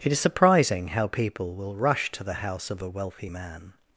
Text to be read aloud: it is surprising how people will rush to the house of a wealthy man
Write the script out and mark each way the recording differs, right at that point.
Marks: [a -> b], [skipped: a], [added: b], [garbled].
it is surprising how people will rush to the house of a wealthy man